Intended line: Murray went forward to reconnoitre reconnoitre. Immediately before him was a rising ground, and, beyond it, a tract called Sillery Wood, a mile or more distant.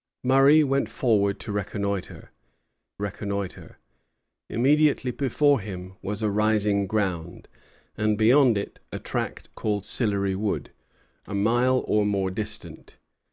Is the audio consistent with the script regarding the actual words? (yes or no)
yes